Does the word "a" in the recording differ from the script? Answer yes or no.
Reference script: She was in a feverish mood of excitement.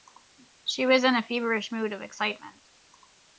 no